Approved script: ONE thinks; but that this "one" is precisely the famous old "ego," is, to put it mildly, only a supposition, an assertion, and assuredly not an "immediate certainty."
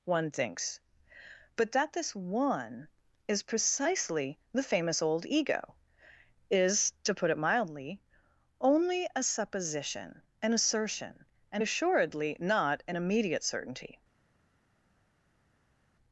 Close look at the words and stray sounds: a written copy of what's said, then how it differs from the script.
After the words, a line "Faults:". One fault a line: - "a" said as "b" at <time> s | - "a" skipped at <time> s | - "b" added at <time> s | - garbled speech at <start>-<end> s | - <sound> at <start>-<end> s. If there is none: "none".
ONE thinks; but that this "one" is precisely the famous old "ego," is, to put it mildly, only a supposition, an assertion, and assuredly not an "immediate certainty."
Faults:
none